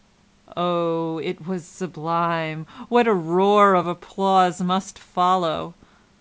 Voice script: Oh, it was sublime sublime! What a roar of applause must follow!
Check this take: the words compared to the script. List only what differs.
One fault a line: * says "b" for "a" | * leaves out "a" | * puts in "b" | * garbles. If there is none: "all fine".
* leaves out "sublime"